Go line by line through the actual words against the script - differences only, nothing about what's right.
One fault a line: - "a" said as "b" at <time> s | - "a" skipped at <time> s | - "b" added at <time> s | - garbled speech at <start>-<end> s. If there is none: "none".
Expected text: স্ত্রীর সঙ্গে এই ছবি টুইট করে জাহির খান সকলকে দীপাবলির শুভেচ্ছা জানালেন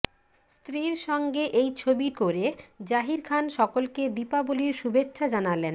- "টুইট" skipped at 2.1 s